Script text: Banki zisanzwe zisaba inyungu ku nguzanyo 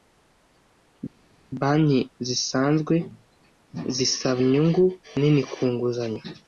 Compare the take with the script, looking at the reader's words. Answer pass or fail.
fail